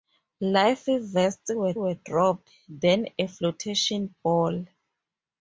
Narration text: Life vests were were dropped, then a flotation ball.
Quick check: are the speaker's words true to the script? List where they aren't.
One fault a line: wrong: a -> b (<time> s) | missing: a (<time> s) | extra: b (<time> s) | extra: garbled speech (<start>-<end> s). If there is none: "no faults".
no faults